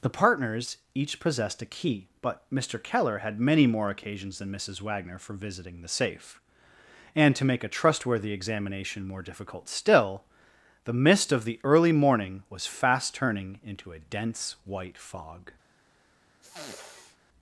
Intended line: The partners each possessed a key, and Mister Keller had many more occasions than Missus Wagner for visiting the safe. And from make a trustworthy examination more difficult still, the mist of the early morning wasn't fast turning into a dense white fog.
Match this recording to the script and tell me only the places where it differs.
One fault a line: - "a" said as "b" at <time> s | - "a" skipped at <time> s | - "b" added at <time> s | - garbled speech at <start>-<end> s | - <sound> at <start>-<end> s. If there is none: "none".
- "and" said as "but" at 2.2 s
- "from" said as "to" at 7.3 s
- "wasn't" said as "was" at 12.5 s
- sniff at 16.4-17.2 s